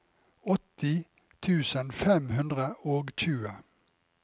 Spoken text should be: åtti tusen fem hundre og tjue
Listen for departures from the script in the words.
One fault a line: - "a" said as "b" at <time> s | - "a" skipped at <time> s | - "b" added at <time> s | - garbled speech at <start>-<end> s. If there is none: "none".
none